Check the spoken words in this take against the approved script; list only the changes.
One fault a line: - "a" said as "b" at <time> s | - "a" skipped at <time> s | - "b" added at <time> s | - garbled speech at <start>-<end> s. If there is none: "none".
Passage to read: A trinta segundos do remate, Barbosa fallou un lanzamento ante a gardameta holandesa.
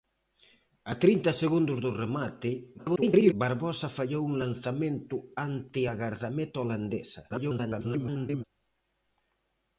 - garbled speech at 2.8-3.3 s
- garbled speech at 7.3-8.4 s